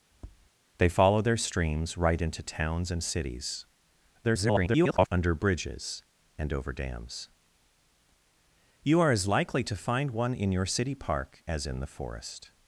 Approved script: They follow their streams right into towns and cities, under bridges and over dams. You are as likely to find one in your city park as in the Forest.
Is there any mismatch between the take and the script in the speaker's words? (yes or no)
yes